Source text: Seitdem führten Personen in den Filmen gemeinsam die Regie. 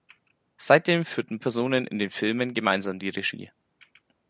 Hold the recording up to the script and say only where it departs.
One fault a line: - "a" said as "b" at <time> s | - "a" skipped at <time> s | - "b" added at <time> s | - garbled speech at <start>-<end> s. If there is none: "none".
none